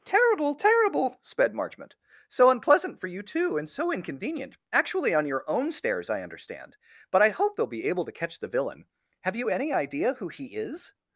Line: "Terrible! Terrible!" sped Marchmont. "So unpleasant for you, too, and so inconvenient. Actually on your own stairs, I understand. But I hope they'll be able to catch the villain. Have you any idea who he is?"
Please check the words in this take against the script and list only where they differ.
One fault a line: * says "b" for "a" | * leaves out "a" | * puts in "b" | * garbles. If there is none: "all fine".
all fine